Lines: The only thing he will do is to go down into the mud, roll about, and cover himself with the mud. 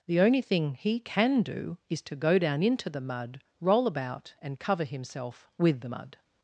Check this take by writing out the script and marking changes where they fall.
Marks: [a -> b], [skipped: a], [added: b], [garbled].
The only thing he [will -> can] do is to go down into the mud, roll about, and cover himself with the mud.